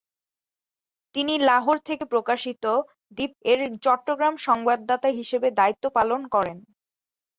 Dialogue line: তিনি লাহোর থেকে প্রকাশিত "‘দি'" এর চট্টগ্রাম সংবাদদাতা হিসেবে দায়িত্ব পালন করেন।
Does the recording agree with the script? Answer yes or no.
yes